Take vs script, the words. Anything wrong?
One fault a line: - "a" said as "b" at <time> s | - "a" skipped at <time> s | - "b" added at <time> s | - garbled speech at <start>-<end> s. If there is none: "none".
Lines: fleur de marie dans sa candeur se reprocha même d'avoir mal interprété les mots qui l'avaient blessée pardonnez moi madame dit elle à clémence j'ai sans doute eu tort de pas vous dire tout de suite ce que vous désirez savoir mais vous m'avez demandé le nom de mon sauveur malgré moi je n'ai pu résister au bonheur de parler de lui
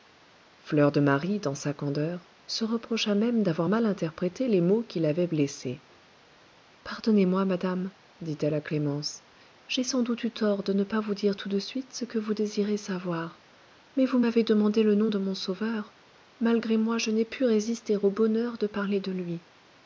- "ne" added at 10.7 s